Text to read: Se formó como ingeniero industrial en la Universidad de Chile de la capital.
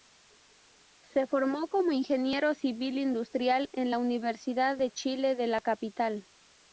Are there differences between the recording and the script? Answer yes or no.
yes